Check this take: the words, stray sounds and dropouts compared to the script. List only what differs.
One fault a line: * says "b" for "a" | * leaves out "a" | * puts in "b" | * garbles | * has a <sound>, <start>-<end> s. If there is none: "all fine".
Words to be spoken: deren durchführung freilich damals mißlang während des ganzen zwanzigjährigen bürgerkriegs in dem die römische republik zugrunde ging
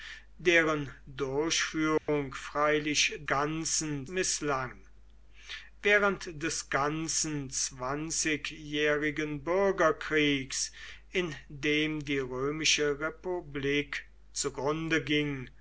* has a dropout, 2.0-2.1 s
* says "ganzen" for "damals"